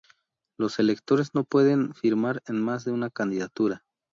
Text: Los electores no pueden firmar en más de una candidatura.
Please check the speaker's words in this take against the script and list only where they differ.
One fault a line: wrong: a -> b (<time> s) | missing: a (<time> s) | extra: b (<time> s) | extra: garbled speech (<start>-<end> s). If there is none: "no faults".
no faults